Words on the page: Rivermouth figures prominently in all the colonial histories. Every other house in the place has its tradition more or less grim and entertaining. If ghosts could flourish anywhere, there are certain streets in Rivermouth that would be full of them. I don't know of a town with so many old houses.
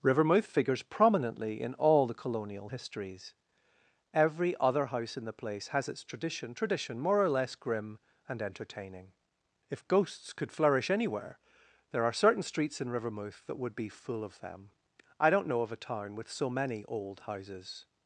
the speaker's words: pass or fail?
fail